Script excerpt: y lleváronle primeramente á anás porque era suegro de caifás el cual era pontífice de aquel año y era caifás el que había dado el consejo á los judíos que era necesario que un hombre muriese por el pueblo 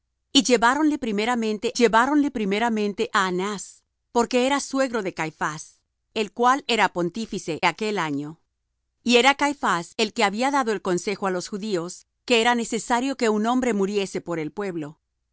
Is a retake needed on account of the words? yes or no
yes